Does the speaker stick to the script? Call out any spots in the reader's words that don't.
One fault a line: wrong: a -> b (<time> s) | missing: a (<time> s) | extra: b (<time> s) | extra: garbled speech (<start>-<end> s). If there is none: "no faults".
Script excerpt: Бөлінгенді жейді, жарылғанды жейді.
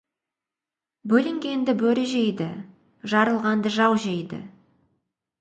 extra: бөрі (1.8 s)
extra: жау (3.8 s)